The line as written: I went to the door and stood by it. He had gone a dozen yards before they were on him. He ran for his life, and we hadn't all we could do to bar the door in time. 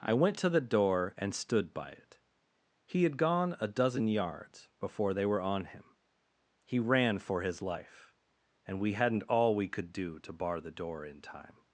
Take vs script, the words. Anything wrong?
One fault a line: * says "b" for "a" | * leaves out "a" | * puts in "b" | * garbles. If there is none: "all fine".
all fine